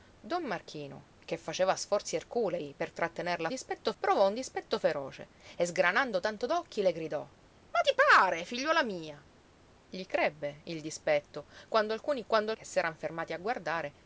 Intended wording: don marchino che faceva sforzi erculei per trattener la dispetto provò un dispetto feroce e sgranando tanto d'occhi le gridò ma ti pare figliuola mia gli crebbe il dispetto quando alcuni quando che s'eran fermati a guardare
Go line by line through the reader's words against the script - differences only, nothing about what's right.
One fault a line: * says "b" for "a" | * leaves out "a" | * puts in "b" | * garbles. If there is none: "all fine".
all fine